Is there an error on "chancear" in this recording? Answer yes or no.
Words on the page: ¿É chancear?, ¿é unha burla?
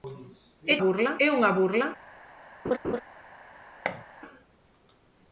yes